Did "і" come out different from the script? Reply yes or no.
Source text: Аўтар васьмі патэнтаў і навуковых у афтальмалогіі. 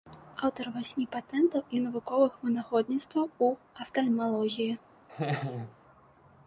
no